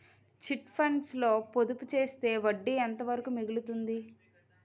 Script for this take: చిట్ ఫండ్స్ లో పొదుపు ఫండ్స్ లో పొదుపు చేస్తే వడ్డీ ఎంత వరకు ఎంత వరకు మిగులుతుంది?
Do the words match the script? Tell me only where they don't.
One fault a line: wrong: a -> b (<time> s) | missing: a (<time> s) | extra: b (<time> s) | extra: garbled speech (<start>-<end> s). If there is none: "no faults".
missing: ఫండ్స్ లో పొదుపు (1.9 s)
missing: ఎంత వరకు (3.3 s)